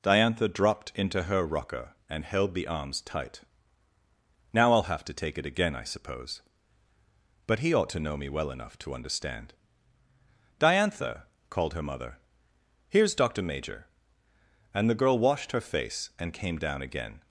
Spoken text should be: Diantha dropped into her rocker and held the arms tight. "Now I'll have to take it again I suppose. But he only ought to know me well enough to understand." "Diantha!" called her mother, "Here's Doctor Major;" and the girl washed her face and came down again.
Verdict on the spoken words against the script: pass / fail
fail